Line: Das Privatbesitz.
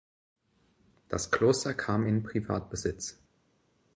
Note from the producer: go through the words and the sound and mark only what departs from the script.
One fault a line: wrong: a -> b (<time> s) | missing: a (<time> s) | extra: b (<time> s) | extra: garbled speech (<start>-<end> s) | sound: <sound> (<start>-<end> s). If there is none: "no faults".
extra: Kloster kam in (1.3 s)